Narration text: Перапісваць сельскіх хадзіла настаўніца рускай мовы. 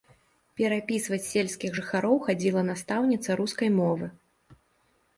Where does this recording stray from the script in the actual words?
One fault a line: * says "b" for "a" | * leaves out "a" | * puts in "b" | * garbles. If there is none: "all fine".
* puts in "жыхароў"